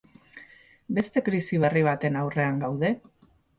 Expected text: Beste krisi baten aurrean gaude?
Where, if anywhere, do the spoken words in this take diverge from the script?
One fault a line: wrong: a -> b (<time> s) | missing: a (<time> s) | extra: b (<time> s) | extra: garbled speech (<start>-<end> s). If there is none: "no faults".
extra: berri (1.6 s)